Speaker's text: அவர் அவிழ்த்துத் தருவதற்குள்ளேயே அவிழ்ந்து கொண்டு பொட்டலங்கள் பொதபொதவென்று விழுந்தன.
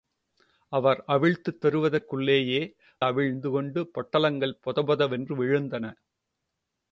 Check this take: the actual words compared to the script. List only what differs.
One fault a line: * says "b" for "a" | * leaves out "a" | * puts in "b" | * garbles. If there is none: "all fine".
all fine